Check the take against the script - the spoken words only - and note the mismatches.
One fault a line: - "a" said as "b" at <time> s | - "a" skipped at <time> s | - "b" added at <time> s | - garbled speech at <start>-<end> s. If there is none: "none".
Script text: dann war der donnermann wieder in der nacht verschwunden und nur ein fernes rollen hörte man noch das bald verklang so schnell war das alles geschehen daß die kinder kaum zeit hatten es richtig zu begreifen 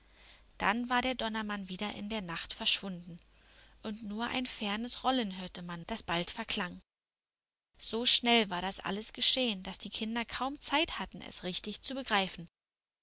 - "noch" skipped at 5.8 s